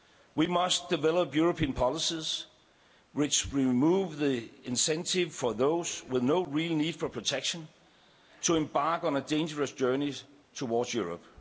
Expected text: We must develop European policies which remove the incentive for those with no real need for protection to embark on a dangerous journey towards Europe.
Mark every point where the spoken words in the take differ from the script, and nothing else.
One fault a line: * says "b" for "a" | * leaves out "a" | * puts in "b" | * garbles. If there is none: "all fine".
all fine